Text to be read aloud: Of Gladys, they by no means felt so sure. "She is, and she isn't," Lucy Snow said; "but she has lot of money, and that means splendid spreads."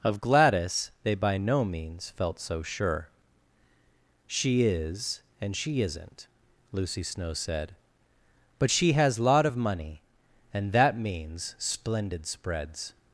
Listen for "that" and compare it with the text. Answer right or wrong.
right